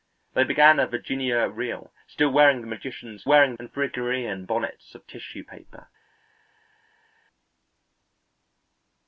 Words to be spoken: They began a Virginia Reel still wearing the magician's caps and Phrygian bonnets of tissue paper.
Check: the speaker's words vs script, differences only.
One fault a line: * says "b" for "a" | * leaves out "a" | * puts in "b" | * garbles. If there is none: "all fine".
* says "wearing" for "caps"